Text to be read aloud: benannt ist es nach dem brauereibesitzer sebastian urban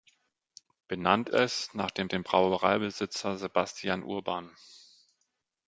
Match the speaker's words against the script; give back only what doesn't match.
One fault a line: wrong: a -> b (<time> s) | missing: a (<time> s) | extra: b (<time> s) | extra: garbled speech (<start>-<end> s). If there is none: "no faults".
missing: ist (1.3 s)
extra: dem (2.1 s)